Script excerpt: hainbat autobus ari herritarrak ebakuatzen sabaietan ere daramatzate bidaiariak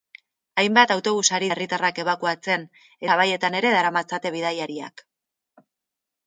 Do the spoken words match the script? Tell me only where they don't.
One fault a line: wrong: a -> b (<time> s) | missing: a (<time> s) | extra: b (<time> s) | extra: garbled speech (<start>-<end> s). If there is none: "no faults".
no faults